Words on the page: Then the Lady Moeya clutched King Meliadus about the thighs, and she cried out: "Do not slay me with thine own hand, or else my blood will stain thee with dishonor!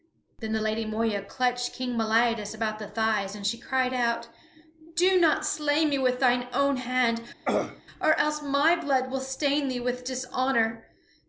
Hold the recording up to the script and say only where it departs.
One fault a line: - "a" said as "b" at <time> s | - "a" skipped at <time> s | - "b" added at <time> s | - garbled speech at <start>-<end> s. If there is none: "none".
none